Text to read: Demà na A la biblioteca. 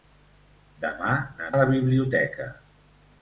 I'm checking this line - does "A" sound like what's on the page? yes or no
yes